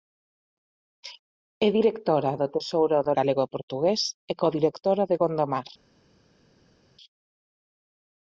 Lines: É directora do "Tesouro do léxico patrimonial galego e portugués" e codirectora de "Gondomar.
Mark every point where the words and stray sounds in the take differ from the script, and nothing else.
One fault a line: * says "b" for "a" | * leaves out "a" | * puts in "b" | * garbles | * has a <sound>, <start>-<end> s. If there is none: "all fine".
* leaves out "léxico patrimonial"